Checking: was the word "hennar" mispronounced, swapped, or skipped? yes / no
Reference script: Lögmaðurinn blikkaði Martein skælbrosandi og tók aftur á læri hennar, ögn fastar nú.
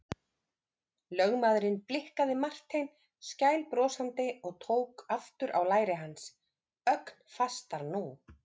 yes